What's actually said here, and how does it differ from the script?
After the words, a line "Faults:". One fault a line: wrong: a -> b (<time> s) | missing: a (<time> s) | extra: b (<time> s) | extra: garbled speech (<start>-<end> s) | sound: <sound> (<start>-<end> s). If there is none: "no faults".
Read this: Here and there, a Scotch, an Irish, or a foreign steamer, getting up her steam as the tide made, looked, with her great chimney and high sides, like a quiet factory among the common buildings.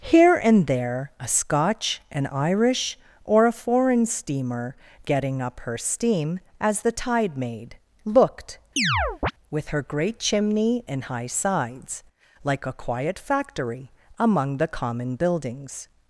Here and there, a Scotch, an Irish, or a foreign steamer, getting up her steam as the tide made, looked, with her great chimney and high sides, like a quiet factory among the common buildings.
Faults:
sound: chirp (8.8-9.3 s)